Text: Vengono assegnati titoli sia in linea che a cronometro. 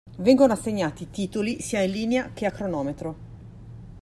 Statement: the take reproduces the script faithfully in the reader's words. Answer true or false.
true